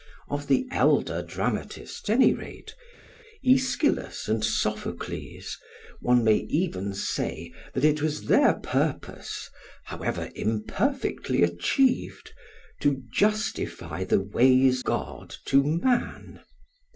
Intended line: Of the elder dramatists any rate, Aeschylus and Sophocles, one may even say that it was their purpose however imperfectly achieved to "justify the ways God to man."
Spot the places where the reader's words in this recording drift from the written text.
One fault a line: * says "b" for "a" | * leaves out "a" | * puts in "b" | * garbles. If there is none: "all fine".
all fine